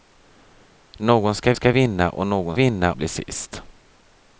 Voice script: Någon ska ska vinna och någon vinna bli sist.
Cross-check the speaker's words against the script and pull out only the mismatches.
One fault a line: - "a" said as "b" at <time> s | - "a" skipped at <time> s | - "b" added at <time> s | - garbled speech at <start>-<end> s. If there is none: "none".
none